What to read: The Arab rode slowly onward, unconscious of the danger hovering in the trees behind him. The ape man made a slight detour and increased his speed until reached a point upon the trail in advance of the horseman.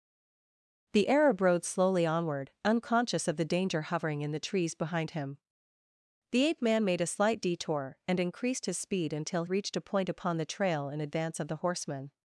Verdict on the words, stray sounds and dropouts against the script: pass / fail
pass